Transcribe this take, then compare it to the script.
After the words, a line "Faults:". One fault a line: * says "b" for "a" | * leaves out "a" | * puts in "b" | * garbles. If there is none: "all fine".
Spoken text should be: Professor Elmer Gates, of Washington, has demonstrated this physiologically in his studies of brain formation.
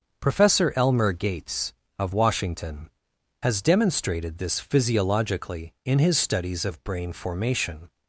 Professor Elmer Gates, of Washington, has demonstrated this physiologically in his studies of brain formation.
Faults:
all fine